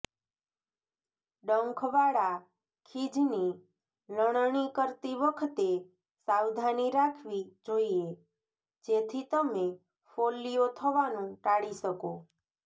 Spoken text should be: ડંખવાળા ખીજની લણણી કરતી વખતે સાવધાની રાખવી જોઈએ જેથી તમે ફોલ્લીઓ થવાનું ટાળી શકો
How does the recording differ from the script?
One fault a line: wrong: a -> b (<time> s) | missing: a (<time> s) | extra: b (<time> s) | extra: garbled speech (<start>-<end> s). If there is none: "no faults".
no faults